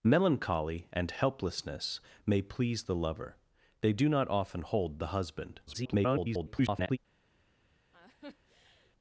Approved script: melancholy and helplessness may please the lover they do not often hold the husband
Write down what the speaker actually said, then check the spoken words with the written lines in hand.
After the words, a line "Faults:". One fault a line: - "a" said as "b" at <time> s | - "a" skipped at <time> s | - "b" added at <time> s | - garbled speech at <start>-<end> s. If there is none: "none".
melancholy and helplessness may please the lover they do not often hold the husband [garbled]
Faults:
- garbled speech at 5.7-7.0 s